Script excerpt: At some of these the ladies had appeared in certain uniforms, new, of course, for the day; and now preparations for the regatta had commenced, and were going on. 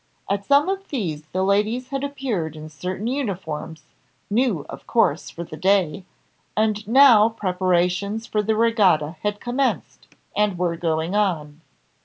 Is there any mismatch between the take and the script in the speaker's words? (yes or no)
no